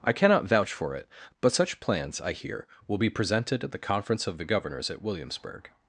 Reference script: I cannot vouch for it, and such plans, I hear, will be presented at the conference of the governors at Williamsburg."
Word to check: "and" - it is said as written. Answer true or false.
false